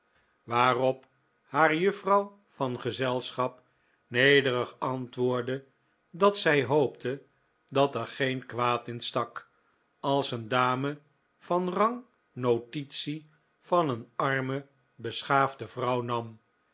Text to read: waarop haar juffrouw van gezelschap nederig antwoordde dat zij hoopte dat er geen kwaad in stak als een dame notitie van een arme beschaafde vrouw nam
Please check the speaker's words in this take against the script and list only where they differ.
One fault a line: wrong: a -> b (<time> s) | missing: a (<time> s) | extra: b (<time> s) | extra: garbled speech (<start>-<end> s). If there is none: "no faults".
extra: van rang (11.4 s)